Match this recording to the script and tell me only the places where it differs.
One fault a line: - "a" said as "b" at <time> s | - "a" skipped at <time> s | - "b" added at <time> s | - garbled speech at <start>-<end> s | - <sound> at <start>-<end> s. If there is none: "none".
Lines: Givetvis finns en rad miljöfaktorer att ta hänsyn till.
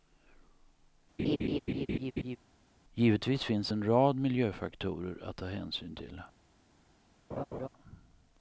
- laugh at 1.2-2.4 s
- laugh at 7.3-7.7 s